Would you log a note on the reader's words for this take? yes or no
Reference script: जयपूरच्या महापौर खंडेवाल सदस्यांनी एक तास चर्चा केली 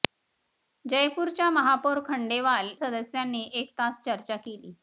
no